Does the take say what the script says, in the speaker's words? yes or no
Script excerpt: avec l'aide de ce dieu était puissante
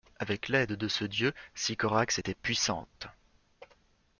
no